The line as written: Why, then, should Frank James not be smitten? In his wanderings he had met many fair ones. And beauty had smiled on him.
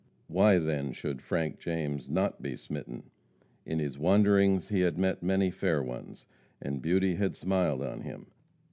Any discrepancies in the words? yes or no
no